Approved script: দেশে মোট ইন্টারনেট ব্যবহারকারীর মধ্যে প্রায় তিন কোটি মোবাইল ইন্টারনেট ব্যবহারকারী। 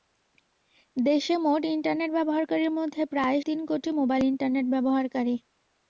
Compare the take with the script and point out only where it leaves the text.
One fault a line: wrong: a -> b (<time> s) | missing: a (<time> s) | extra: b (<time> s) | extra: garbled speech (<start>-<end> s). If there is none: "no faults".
no faults